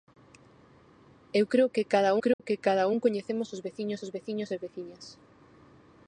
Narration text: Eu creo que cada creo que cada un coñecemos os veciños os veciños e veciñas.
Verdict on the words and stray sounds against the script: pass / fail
fail